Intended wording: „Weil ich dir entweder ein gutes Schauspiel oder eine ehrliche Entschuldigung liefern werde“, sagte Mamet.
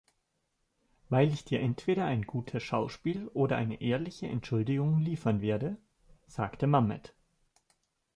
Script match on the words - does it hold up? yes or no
yes